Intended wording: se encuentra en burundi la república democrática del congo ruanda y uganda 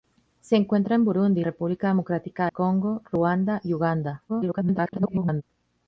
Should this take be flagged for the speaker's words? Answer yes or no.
yes